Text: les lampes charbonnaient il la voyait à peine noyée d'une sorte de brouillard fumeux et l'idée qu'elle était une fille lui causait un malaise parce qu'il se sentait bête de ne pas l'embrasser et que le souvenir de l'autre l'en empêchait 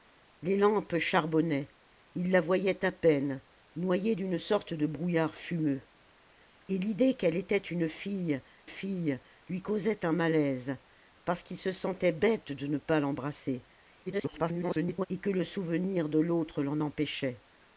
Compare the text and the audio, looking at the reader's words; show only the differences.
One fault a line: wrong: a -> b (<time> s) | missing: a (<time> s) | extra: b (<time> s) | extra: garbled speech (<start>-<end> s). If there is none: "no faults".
extra: fille (8.6 s)
extra: garbled speech (14.1-15.1 s)